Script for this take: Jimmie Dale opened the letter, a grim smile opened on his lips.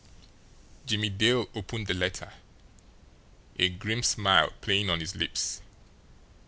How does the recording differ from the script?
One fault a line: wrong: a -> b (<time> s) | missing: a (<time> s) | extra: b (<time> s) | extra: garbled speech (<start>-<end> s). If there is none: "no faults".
wrong: opened -> playing (4.6 s)